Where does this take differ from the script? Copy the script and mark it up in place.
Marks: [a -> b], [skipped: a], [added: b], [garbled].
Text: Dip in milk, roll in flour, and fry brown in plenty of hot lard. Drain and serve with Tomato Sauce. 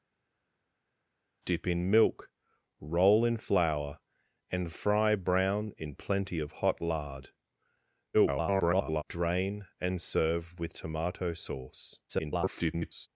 Dip in milk, roll in flour, and fry brown in plenty of hot lard. [garbled] Drain and serve with Tomato Sauce. [garbled]